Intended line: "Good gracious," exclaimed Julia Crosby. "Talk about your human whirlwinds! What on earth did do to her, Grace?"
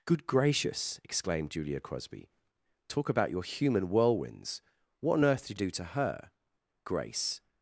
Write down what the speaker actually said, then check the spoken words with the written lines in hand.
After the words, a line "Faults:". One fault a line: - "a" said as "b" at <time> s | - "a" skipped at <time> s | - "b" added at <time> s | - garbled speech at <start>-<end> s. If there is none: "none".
"Good gracious," exclaimed Julia Crosby. "Talk about your human whirlwinds! What on earth did do to her, Grace?"
Faults:
none